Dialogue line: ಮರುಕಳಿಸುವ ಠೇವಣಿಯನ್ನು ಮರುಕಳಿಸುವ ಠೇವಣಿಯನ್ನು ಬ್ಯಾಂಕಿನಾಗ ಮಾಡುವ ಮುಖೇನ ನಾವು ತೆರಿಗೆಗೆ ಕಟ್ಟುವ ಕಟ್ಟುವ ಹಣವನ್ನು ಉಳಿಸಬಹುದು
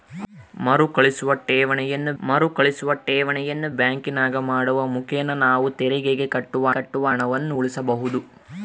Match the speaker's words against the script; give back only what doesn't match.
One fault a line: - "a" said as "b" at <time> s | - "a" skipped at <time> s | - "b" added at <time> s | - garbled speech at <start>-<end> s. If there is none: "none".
none